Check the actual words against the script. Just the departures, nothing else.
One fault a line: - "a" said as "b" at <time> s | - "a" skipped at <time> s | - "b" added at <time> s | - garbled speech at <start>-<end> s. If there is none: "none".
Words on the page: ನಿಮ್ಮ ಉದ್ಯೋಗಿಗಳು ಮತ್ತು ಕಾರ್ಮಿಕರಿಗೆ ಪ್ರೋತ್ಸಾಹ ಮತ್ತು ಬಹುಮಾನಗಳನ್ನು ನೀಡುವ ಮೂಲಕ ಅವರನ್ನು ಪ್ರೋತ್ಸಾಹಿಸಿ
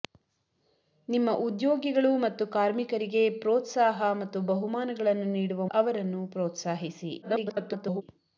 - "ಮೂಲಕ" skipped at 5.7 s
- garbled speech at 7.2-8.0 s